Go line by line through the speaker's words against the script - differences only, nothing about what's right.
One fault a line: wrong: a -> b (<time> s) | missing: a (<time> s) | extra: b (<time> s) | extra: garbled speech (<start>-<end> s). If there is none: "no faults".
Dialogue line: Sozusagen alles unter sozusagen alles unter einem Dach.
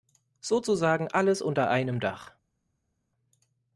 missing: sozusagen alles unter (1.7 s)